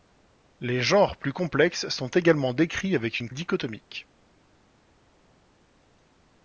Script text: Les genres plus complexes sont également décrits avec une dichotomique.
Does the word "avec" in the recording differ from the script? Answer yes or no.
no